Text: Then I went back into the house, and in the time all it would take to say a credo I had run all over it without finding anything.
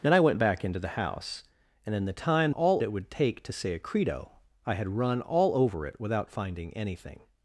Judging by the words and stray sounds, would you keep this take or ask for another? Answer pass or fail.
pass